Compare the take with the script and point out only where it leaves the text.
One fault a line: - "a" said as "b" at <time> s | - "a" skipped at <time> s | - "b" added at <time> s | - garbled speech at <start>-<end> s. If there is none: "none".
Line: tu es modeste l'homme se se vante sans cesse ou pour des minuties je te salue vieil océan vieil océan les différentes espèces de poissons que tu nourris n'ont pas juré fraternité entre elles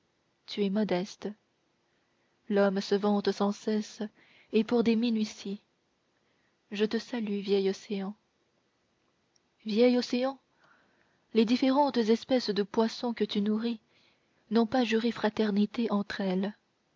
- "se" skipped at 3.0 s
- "ou" said as "et" at 4.5 s